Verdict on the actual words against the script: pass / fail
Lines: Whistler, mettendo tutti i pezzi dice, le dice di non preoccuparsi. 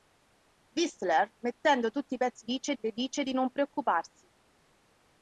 pass